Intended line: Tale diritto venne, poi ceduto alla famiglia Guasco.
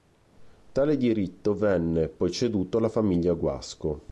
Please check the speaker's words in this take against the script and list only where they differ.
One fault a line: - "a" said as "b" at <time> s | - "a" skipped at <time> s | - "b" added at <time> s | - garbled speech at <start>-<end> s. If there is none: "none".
none